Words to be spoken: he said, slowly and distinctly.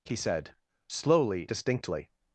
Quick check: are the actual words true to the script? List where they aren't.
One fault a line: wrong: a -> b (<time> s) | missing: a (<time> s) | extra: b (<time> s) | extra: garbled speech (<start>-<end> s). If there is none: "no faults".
missing: and (1.5 s)